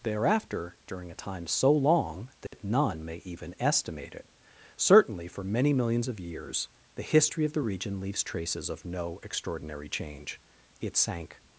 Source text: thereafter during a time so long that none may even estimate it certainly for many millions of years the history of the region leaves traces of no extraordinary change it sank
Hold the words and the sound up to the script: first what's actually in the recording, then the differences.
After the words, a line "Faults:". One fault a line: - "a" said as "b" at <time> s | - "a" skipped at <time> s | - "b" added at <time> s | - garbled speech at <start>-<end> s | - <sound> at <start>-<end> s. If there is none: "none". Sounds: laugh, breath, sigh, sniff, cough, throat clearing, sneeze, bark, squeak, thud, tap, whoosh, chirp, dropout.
thereafter during a time so long that none may even estimate it certainly for many millions of years the history of the region leaves traces of no extraordinary change it sank
Faults:
- dropout at 2.5-2.5 s